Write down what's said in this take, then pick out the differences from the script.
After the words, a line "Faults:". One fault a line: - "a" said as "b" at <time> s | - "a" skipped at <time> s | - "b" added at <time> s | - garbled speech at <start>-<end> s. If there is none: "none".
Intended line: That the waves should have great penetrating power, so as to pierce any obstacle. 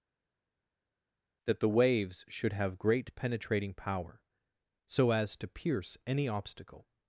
That the waves should have great penetrating power, so as to pierce any obstacle.
Faults:
none